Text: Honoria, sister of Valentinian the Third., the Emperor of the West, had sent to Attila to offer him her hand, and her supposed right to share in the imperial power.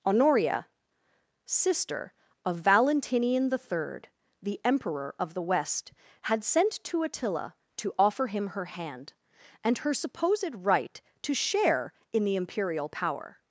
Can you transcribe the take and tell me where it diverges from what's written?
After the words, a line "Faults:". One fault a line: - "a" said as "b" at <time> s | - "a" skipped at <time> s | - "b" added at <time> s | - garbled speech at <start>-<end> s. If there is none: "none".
Honoria, sister of Valentinian the Third., the Emperor of the West, had sent to Attila to offer him her hand, and her supposed right to share in the imperial power.
Faults:
none